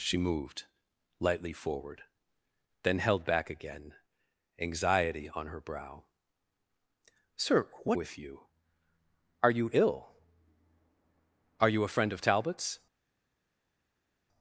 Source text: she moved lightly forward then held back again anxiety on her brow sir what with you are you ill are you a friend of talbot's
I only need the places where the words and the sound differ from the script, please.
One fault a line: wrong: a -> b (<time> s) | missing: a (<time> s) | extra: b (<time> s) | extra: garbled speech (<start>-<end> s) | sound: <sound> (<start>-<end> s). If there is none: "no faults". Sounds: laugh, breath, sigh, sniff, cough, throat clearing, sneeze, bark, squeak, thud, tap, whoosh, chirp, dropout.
no faults